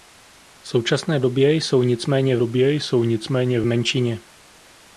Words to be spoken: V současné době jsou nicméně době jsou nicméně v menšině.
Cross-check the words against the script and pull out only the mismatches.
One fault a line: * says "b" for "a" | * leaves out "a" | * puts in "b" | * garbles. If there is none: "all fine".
all fine